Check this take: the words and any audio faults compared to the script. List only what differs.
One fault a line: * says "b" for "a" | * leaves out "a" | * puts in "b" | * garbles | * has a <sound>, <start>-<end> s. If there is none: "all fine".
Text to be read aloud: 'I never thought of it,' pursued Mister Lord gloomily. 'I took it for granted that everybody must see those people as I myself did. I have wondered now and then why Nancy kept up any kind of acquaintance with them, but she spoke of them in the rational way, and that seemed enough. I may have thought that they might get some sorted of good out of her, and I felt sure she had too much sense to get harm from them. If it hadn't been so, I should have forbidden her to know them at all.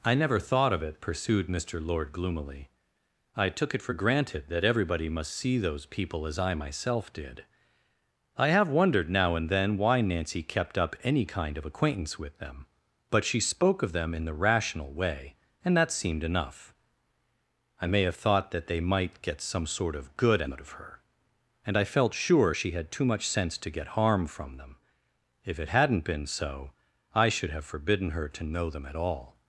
* says "sort" for "sorted"